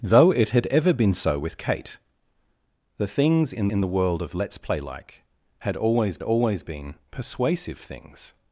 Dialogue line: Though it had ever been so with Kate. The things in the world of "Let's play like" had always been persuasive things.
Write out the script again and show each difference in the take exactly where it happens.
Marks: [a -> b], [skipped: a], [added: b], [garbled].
Though it had ever been so with Kate. The things in [added: in] the world of "Let's play like" had always [added: always] been persuasive things.